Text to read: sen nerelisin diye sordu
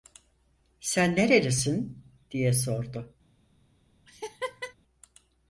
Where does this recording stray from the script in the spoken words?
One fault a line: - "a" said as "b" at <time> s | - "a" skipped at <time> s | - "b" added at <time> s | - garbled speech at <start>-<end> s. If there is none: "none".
none